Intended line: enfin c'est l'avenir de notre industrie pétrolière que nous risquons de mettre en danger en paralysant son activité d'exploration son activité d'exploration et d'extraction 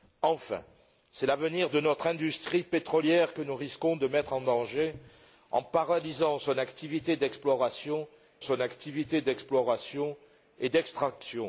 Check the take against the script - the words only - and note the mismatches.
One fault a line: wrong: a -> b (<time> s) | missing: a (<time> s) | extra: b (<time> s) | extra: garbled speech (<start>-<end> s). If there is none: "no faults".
no faults